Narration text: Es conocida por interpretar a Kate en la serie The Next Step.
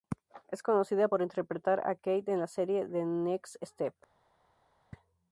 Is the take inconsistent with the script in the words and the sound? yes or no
no